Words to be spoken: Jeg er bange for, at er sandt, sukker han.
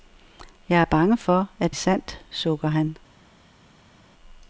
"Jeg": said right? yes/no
yes